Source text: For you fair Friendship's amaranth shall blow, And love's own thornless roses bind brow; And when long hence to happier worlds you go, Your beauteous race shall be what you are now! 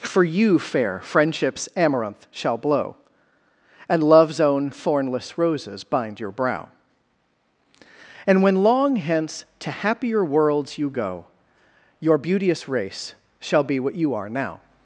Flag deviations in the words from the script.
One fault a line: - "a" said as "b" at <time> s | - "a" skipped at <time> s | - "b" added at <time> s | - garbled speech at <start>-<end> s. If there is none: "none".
- "your" added at 6.2 s